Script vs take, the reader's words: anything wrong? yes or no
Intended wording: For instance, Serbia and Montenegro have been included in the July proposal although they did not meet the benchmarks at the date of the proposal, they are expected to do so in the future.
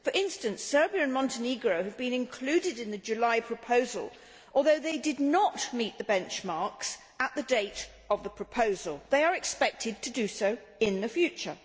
no